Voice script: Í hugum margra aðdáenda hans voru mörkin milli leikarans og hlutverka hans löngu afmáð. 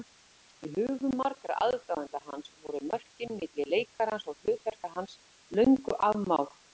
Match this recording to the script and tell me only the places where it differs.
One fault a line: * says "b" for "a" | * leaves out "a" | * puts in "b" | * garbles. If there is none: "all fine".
all fine